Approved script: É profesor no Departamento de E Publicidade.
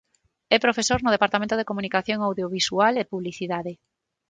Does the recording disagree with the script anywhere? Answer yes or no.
yes